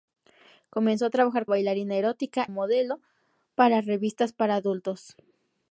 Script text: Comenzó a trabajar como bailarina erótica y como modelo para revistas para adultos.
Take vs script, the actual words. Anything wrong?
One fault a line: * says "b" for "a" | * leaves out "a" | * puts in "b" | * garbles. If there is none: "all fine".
* leaves out "como"
* leaves out "y como"